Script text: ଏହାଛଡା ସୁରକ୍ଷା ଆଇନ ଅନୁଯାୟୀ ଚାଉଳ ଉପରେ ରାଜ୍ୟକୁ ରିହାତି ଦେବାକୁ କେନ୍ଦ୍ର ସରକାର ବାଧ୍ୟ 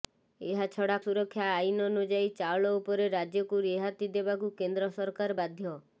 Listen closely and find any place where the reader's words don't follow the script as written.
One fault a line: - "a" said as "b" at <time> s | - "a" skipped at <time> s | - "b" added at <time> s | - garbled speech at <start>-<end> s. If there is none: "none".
none